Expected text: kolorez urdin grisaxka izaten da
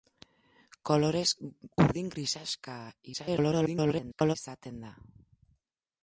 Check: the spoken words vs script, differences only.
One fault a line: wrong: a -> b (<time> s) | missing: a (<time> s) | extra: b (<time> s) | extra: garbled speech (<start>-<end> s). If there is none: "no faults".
extra: garbled speech (3.1-4.4 s)